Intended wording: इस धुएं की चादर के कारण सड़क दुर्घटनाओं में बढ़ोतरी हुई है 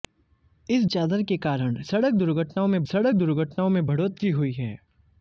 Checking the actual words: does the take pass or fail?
fail